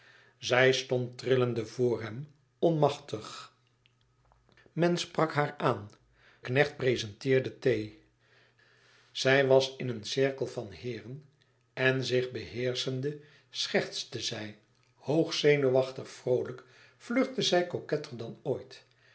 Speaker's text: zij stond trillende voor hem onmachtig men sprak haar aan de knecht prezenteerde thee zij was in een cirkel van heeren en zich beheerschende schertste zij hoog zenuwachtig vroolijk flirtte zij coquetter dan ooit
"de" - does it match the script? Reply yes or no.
no